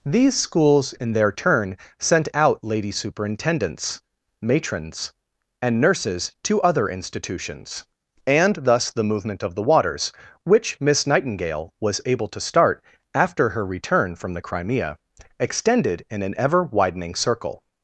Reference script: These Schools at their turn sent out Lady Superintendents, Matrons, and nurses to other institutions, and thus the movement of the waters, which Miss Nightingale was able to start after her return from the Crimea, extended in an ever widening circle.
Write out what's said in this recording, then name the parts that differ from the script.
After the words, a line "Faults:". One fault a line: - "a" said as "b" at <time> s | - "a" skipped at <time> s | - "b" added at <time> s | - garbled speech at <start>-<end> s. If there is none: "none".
These Schools in their turn sent out Lady Superintendents, Matrons, and nurses to other institutions, and thus the movement of the waters, which Miss Nightingale was able to start after her return from the Crimea, extended in an ever widening circle.
Faults:
- "at" said as "in" at 0.9 s